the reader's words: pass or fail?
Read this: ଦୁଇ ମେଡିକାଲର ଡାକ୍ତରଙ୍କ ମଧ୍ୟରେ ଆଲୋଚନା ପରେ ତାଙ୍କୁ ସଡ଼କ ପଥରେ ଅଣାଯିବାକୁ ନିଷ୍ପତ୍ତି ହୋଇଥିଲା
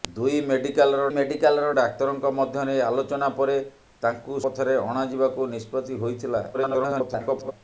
fail